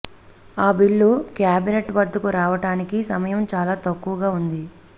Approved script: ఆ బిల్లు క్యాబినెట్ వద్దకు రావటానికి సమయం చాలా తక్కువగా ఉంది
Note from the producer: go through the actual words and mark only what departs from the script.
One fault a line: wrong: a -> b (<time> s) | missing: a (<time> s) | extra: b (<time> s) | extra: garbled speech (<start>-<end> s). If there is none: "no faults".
no faults